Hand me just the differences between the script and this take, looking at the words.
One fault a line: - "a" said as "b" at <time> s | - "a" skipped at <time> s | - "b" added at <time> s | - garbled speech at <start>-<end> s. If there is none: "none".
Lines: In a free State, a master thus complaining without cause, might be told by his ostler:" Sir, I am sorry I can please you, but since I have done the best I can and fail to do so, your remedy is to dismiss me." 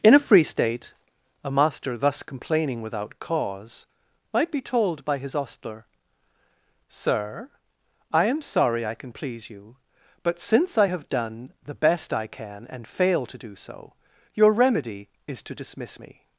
none